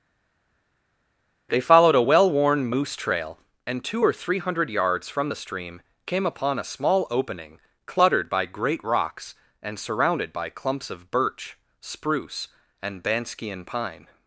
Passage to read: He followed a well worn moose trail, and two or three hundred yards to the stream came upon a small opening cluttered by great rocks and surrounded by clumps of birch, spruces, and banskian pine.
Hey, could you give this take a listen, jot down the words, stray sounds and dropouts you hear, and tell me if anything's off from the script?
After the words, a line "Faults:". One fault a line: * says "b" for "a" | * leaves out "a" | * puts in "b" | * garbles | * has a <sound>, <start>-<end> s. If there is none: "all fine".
They followed a well worn moose trail, and two or three hundred yards from the stream came upon a small opening cluttered by great rocks and surrounded by clumps of birch, spruce, and banskian pine.
Faults:
* says "They" for "He"
* says "from" for "to"
* says "spruce" for "spruces"